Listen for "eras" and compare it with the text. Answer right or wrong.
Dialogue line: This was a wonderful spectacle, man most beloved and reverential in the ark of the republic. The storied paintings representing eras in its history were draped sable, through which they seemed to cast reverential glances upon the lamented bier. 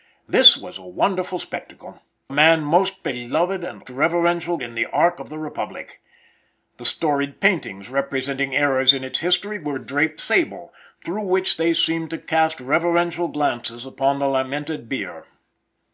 right